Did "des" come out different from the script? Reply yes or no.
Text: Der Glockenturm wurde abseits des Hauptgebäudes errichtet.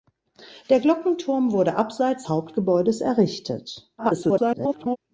yes